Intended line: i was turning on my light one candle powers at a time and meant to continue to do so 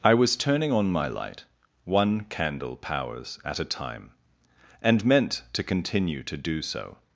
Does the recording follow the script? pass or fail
pass